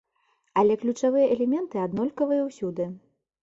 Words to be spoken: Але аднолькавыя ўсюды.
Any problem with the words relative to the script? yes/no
yes